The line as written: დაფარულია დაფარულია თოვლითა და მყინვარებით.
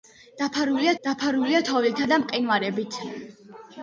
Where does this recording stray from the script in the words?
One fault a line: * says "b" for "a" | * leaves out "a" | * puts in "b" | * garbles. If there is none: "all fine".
all fine